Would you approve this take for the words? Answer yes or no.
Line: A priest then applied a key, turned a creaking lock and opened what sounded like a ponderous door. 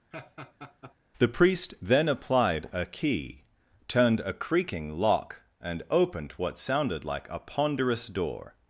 no